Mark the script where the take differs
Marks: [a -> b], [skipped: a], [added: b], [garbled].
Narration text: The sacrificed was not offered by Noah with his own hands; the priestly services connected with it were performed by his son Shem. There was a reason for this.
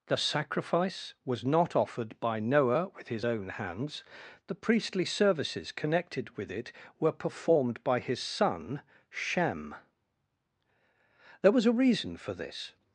The [sacrificed -> sacrifice] was not offered by Noah with his own hands; the priestly services connected with it were performed by his son Shem. There was a reason for this.